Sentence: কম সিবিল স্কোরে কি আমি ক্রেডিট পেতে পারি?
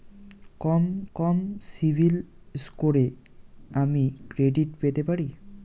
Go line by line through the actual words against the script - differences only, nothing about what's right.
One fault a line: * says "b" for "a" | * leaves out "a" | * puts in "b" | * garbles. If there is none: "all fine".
* puts in "কম"
* leaves out "কি"